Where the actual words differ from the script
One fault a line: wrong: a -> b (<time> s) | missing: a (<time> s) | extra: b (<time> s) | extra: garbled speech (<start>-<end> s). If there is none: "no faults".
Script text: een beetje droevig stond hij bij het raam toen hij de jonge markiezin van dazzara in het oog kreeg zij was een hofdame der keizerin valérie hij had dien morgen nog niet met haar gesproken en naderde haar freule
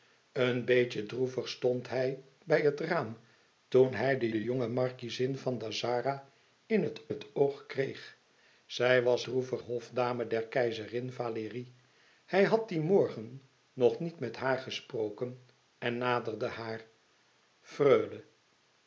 extra: de (4.3 s)
extra: het (7.1 s)
wrong: een -> droevig (9.2 s)